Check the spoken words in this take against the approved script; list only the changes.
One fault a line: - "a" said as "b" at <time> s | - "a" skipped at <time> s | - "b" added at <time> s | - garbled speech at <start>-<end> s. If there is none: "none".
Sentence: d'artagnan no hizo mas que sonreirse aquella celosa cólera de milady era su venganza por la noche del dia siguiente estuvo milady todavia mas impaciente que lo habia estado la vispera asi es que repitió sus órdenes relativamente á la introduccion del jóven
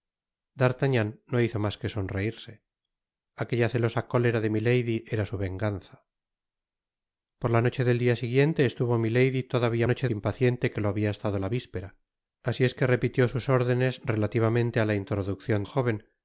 - "mas" said as "noche" at 9.8 s
- "del" skipped at 15.6 s